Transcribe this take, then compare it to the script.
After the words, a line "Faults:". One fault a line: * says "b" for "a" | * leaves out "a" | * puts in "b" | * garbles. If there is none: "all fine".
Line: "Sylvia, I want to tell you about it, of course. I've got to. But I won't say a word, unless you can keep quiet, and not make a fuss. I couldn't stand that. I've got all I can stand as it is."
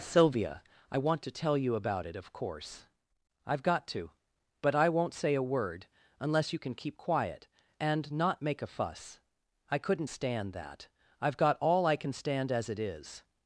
"Sylvia, I want to tell you about it, of course. I've got to. But I won't say a word, unless you can keep quiet, and not make a fuss. I couldn't stand that. I've got all I can stand as it is."
Faults:
all fine